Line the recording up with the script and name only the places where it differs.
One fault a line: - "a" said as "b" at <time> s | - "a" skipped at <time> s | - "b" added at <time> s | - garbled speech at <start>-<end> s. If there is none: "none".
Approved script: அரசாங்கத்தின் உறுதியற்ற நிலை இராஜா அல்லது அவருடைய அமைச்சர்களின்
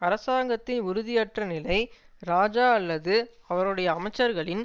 none